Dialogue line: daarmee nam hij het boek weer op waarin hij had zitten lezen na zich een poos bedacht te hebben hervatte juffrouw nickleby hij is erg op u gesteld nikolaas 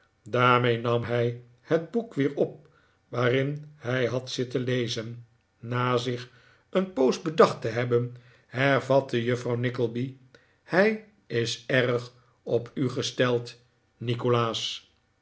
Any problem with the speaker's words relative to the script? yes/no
no